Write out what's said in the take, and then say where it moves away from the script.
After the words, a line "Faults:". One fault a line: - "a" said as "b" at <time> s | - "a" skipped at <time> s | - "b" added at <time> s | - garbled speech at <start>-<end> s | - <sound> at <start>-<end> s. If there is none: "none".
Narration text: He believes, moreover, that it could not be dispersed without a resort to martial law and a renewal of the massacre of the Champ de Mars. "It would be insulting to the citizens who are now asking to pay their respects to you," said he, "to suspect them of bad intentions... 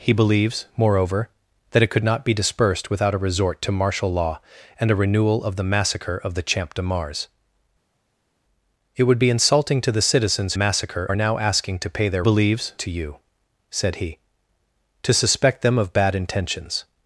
He believes, moreover, that it could not be dispersed without a resort to martial law and a renewal of the massacre of the Champ de Mars. "It would be insulting to the citizens massacre are now asking to pay their believes to you," said he, "to suspect them of bad intentions...
Faults:
- "who" said as "massacre" at 10.6 s
- "respects" said as "believes" at 12.2 s